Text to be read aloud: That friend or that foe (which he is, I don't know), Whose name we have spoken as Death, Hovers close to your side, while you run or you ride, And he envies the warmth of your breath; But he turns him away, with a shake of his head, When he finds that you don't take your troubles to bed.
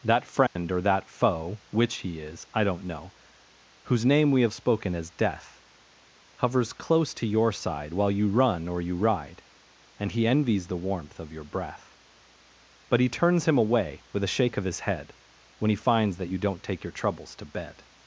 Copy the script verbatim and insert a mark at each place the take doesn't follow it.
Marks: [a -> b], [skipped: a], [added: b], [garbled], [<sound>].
That friend [dropout] or that foe (which he is, I don't know), Whose name we have spoken as Death, Hovers close to your side, while you run or you ride, And he envies the warmth of your breath; But he turns him away, with a shake of his head, When he finds that you don't take your troubles to bed.